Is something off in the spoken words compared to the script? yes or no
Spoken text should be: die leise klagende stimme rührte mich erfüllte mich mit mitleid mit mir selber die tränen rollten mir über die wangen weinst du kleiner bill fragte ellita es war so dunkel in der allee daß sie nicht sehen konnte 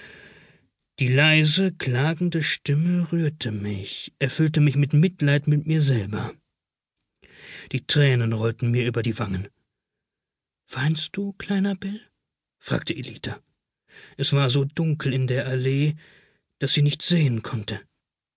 no